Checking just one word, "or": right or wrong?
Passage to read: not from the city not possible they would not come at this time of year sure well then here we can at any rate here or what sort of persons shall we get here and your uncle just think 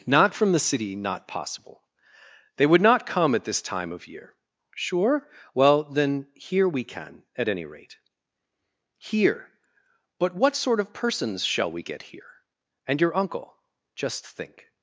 wrong